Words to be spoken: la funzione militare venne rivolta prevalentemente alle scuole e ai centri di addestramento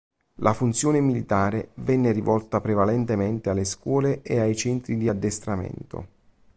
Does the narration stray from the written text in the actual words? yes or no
no